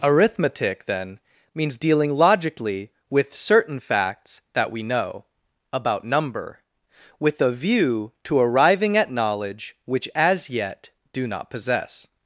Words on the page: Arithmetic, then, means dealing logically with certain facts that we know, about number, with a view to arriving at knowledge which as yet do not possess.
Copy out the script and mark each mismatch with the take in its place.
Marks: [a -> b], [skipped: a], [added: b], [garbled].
Arithmetic, then, means dealing logically with certain facts that we know, about number, with a view to arriving at knowledge which as yet do not possess.